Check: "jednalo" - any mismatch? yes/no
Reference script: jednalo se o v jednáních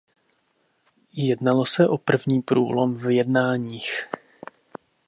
no